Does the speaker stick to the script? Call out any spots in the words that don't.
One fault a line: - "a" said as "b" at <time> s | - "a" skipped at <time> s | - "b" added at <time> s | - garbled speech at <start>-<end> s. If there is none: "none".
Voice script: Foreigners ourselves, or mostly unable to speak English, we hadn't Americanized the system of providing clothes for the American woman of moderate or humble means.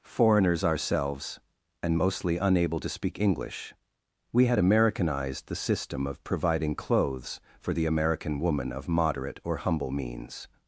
- "or" said as "and" at 1.8 s
- "hadn't" said as "had" at 4.5 s